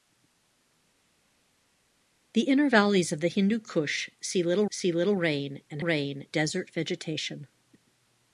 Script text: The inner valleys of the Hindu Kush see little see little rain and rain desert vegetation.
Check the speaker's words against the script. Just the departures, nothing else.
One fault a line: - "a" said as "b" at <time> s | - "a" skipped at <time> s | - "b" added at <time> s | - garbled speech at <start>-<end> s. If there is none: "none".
none